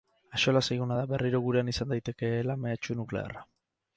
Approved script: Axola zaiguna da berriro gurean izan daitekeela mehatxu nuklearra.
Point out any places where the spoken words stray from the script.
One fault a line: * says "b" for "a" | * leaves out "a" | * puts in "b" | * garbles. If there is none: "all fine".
all fine